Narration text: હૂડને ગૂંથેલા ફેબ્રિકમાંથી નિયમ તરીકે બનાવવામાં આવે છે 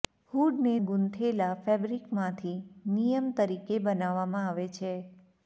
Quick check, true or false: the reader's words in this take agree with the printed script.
true